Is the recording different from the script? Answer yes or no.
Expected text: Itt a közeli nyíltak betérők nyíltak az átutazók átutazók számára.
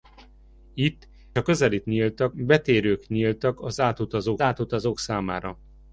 no